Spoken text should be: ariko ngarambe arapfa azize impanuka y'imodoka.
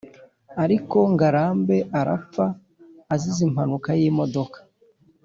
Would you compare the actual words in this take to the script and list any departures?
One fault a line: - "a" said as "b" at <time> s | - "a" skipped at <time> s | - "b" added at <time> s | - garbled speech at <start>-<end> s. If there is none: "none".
none